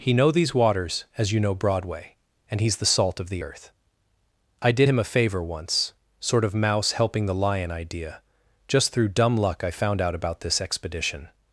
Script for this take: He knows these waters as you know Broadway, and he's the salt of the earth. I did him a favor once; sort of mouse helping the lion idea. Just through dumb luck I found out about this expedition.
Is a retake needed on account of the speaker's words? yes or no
yes